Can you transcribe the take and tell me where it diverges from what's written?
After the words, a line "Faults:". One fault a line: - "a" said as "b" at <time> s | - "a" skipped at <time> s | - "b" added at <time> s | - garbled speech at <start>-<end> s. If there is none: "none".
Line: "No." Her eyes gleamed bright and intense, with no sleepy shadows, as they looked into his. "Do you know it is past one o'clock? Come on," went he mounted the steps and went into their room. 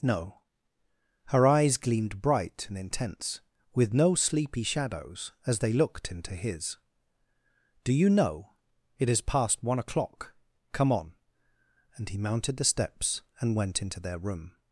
"No." Her eyes gleamed bright and intense, with no sleepy shadows, as they looked into his. "Do you know it is past one o'clock? Come on," and he mounted the steps and went into their room.
Faults:
- "went" said as "and" at 11.9 s